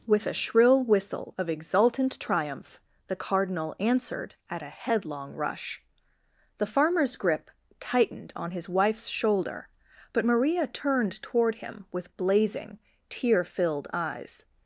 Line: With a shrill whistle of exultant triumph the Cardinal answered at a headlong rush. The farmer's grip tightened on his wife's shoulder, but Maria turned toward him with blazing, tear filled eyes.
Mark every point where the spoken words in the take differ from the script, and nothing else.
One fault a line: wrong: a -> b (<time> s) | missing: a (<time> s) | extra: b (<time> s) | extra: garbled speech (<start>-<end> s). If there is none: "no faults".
no faults